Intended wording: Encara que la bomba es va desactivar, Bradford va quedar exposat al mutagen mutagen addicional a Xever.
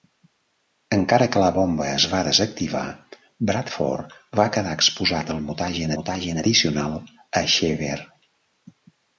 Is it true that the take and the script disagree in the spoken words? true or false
false